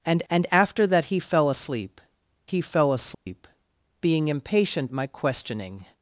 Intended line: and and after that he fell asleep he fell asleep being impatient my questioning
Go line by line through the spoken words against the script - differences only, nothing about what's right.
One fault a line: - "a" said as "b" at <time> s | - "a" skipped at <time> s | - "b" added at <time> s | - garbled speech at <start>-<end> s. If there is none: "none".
none